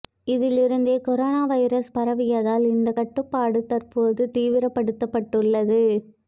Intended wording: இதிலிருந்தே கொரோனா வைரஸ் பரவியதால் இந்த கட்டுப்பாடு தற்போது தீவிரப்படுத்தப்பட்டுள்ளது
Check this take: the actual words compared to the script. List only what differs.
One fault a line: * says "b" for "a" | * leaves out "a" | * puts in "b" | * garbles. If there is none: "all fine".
all fine